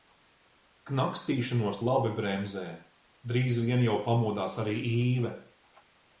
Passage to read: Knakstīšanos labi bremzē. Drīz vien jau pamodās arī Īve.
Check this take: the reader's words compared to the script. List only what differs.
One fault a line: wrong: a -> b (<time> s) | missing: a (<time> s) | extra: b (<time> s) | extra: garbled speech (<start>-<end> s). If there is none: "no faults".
no faults